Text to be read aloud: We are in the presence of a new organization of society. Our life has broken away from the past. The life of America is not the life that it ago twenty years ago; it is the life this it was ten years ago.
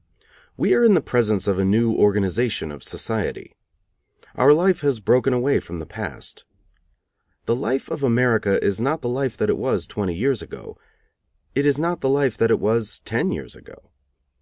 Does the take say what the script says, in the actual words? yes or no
no